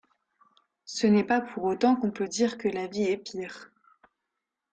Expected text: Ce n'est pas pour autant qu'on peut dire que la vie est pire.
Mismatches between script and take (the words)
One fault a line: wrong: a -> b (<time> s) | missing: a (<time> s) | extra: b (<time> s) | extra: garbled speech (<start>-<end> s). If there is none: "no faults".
no faults